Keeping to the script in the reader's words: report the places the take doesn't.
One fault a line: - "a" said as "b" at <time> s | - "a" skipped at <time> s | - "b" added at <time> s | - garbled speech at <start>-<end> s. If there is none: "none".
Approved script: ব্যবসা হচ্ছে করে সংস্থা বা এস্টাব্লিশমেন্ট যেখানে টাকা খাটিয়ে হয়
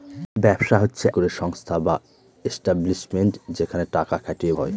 none